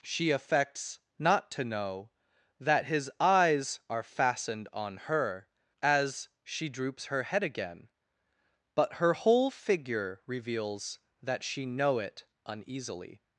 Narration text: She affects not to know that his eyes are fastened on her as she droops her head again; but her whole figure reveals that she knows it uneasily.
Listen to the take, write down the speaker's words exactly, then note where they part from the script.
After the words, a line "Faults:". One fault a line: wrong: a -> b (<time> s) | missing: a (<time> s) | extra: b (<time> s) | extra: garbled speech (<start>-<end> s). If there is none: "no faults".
She affects not to know that his eyes are fastened on her as she droops her head again; but her whole figure reveals that she know it uneasily.
Faults:
wrong: knows -> know (11.7 s)